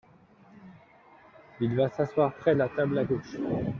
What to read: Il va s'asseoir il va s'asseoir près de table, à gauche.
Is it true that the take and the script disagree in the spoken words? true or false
true